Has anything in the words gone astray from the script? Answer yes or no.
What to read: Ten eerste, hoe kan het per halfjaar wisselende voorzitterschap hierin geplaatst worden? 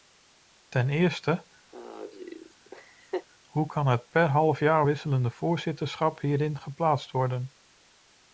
no